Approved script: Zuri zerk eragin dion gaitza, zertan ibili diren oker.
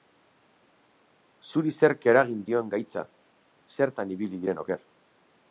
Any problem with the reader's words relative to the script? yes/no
no